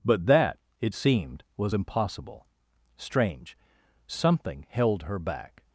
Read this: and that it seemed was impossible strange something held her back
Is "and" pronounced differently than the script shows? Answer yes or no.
yes